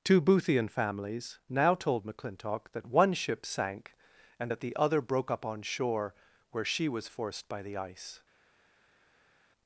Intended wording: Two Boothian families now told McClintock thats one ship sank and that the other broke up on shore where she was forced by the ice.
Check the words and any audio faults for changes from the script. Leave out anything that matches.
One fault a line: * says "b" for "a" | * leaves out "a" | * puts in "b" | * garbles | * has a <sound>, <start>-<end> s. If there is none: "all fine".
* says "that" for "thats"